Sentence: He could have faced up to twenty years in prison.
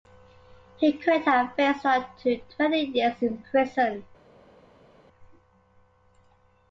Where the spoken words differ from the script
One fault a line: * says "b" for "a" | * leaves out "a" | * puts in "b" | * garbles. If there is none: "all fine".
all fine